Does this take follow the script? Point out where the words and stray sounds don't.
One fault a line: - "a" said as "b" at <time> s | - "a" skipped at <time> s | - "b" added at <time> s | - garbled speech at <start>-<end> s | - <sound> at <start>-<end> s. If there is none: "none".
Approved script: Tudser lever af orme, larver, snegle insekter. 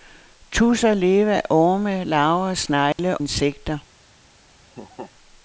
- dropout at 2.9-3.0 s
- laugh at 4.7-5.1 s